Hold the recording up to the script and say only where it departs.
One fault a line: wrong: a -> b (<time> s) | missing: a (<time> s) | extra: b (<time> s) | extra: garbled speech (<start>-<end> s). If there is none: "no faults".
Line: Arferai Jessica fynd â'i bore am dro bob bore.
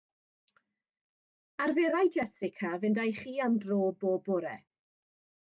wrong: bore -> chi (3.2 s)